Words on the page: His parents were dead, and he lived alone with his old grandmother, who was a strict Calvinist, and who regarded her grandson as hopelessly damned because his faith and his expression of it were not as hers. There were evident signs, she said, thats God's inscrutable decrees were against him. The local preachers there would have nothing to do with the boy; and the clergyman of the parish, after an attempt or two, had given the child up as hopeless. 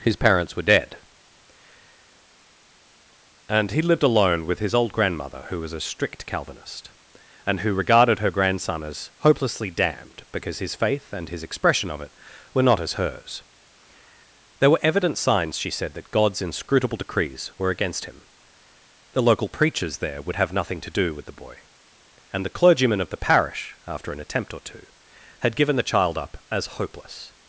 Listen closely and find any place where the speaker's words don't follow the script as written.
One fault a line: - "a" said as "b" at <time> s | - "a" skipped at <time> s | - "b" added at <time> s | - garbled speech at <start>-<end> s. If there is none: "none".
- "thats" said as "that" at 15.9 s